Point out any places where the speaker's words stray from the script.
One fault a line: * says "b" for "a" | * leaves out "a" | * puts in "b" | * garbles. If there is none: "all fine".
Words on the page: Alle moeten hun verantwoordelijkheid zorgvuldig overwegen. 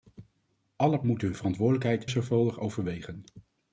all fine